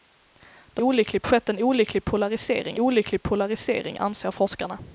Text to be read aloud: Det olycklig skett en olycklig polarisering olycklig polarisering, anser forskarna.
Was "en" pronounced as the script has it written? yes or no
yes